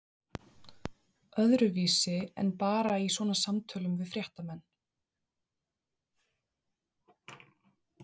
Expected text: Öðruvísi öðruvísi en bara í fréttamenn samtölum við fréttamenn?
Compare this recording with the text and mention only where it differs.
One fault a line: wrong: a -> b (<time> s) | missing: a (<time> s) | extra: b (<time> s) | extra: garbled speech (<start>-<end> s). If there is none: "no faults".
missing: öðruvísi (2.1 s)
wrong: fréttamenn -> svona (3.2 s)